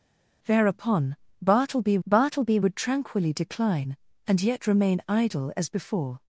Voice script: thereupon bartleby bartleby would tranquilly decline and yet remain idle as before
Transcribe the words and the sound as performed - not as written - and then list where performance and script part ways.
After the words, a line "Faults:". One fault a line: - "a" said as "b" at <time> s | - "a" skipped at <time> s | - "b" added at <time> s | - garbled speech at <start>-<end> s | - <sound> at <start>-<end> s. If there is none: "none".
thereupon bartleby bartleby would tranquilly decline and yet remain idle as before
Faults:
none